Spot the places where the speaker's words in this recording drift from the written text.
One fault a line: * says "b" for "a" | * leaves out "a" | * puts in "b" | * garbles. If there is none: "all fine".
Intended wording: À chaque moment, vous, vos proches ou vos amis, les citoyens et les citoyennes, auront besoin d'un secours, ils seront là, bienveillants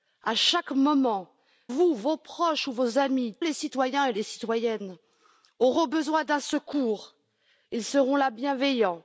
all fine